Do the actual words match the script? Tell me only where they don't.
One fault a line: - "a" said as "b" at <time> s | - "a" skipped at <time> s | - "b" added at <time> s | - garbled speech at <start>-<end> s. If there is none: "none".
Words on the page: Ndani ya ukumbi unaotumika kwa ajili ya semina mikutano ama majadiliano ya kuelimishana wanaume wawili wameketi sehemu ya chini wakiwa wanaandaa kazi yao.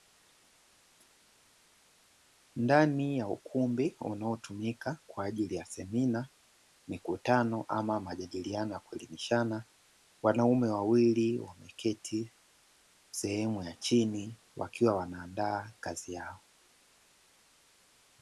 none